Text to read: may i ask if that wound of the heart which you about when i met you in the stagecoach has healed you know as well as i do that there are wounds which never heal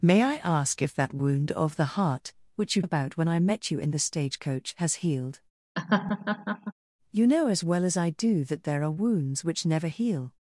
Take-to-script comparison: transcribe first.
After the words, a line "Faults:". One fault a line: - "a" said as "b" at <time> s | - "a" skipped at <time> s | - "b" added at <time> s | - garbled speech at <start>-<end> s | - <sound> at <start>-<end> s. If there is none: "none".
may i ask if that wound of the heart which you about when i met you in the stagecoach has healed you know as well as i do that there are wounds which never heal
Faults:
- laugh at 5.8-6.7 s